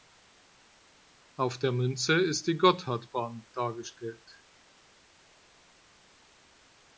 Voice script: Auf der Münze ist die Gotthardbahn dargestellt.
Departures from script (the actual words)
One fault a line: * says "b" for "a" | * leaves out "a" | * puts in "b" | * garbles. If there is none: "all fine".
all fine